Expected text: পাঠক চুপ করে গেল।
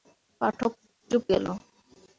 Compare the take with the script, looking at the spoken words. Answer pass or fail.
fail